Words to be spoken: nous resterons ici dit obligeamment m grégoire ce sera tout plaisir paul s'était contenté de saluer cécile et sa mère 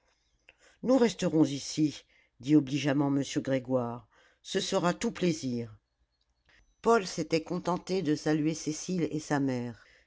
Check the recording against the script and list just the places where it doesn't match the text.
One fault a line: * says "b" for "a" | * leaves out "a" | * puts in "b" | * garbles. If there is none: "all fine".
all fine